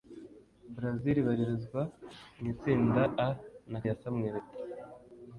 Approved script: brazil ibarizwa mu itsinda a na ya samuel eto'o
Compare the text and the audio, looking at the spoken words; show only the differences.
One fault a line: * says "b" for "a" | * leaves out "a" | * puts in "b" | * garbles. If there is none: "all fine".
all fine